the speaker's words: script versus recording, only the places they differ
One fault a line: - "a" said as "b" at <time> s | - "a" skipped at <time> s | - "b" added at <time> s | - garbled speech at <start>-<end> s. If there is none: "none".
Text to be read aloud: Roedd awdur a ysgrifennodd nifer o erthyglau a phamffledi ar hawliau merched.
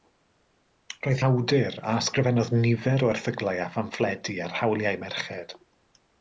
none